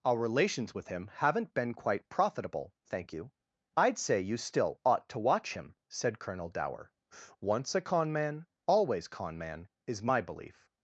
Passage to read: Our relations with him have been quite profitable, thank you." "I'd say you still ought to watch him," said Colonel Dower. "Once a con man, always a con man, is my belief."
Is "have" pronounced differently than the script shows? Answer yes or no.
yes